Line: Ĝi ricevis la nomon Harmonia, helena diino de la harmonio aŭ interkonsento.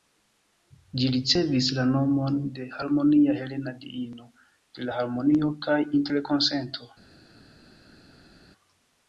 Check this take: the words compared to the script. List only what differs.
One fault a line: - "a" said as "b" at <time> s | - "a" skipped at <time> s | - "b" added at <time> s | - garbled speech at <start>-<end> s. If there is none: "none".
- "de" added at 2.5 s
- "aŭ" said as "kaj" at 5.7 s